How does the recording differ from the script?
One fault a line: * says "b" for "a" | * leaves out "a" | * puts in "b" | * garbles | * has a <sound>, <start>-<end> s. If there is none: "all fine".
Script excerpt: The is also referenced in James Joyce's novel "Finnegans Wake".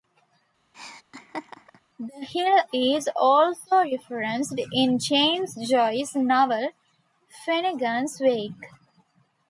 * has a laugh, 0.7-1.8 s
* puts in "hill"